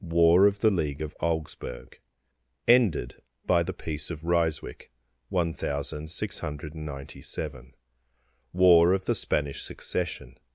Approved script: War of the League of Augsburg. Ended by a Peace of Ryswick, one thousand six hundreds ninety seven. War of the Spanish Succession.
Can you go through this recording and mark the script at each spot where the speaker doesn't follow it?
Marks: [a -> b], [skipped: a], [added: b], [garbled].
War of the League of Augsburg. Ended by [a -> the] Peace of Ryswick, one thousand six [hundreds -> hundred] ninety seven. War of the Spanish Succession.